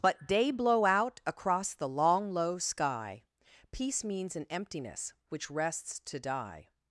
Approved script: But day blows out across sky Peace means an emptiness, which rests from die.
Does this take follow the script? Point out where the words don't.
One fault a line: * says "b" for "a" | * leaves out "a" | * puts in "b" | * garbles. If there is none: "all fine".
* says "blow" for "blows"
* puts in "the long low"
* says "to" for "from"